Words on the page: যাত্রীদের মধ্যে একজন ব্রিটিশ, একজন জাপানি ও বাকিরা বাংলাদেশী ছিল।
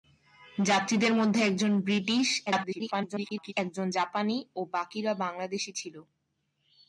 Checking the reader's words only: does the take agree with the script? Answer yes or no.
no